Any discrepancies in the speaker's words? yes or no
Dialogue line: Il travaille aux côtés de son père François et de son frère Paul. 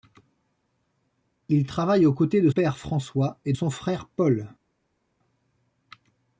yes